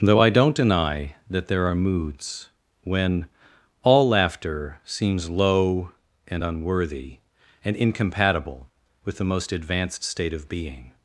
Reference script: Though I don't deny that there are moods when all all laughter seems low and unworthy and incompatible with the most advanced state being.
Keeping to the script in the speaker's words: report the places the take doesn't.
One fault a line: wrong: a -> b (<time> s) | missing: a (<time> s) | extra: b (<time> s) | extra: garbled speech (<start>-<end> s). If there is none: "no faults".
missing: all (4.1 s)
extra: of (10.3 s)